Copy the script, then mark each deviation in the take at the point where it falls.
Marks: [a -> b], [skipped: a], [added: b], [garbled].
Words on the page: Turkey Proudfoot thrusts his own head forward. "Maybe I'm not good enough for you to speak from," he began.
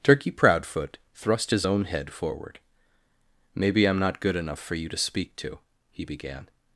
Turkey Proudfoot [thrusts -> thrust] his own head forward. "Maybe I'm not good enough for you to speak [from," -> to] he began.